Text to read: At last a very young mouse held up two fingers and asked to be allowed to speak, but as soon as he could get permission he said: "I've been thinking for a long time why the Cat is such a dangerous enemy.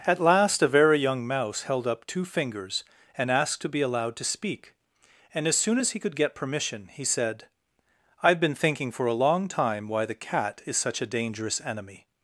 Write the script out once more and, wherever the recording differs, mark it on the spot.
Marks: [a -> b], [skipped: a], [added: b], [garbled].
At last a very young mouse held up two fingers and asked to be allowed to speak, [but -> and] as soon as he could get permission he said: "I've been thinking for a long time why the Cat is such a dangerous enemy.